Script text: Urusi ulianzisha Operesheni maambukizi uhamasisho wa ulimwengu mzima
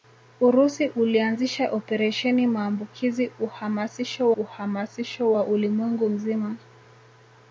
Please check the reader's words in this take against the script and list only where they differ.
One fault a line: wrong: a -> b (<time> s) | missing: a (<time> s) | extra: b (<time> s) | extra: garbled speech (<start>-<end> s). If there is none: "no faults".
extra: uhamasisho (4.4 s)